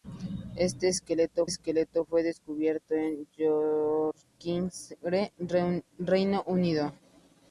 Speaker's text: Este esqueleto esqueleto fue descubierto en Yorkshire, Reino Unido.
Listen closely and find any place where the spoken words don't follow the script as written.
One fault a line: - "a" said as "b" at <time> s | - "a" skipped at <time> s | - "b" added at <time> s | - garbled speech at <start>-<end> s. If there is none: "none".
none